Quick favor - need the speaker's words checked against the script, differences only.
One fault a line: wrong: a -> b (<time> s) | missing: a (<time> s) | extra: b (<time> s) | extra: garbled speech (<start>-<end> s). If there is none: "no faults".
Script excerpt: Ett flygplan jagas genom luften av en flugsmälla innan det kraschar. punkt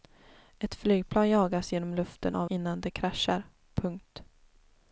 missing: en flugsmälla (2.5 s)